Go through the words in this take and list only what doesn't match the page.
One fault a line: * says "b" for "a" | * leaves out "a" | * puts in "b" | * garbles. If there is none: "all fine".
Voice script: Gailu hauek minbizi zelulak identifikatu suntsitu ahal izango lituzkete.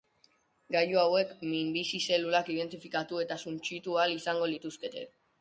* puts in "eta"